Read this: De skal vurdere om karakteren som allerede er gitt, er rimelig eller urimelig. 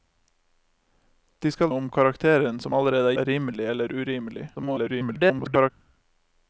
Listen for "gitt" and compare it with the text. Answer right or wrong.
wrong